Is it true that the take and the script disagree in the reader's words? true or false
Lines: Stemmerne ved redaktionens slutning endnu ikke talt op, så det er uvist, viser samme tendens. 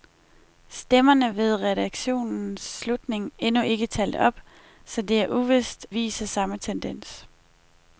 false